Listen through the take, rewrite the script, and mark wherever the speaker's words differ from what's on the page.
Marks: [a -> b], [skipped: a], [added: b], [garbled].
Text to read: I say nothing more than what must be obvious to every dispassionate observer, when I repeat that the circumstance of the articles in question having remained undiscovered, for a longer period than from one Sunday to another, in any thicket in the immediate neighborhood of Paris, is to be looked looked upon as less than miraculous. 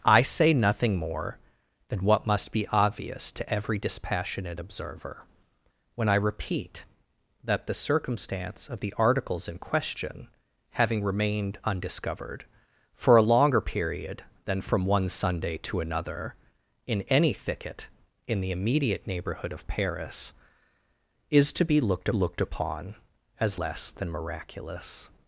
I say nothing more than what must be obvious to every dispassionate observer, when I repeat that the circumstance of the articles in question having remained undiscovered, for a longer period than from one Sunday to another, in any thicket in the immediate neighborhood of Paris, is to be looked looked upon as less than miraculous.